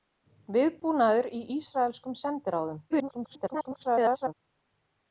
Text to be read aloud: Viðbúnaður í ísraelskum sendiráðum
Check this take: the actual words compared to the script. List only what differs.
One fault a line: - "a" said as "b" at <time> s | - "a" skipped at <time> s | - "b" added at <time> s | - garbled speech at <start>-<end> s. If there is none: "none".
- garbled speech at 2.9-4.3 s